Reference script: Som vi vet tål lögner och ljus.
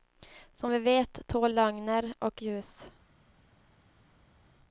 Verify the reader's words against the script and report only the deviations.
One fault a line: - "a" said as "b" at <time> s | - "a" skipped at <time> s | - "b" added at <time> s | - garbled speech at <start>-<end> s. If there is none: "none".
none